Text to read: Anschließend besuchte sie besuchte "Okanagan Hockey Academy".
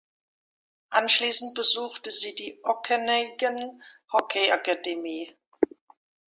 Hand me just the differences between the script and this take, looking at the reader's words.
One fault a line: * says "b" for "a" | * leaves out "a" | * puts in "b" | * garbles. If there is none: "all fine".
* says "die" for "besuchte"